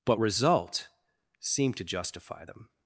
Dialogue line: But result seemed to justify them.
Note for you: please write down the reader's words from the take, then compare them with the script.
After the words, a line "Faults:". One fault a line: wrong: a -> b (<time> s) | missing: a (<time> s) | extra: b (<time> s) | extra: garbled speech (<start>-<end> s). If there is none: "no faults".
But result seemed to justify them.
Faults:
no faults